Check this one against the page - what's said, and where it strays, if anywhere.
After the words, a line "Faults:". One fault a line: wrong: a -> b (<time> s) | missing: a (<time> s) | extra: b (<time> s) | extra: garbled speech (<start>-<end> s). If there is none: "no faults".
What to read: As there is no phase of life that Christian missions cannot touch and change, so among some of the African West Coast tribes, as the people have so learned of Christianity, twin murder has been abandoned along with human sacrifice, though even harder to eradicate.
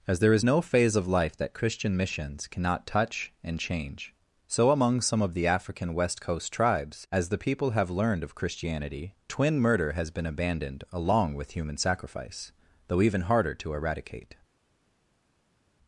As there is no phase of life that Christian missions cannot touch and change, so among some of the African West Coast tribes, as the people have learned of Christianity, twin murder has been abandoned along with human sacrifice, though even harder to eradicate.
Faults:
missing: so (7.9 s)